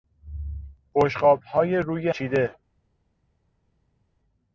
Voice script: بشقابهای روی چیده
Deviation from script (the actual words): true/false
false